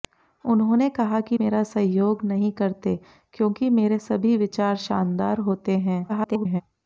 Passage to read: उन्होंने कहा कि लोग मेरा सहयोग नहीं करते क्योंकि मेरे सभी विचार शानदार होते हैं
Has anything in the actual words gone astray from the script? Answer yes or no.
yes